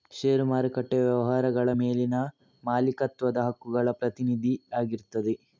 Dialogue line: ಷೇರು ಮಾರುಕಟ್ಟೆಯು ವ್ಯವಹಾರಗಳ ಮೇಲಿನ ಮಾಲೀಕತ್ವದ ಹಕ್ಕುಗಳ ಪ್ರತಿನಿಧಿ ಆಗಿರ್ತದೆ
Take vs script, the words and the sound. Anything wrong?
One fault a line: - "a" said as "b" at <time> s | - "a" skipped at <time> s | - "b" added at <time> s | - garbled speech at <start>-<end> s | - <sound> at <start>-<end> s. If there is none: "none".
none